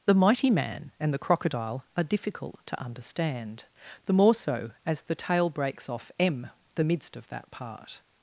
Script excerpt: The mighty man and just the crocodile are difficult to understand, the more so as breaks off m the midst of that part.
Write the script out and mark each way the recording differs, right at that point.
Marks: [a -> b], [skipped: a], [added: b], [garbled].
The mighty man and [skipped: just] the crocodile are difficult to understand, the more so as [added: the tale] breaks off m the midst of that part.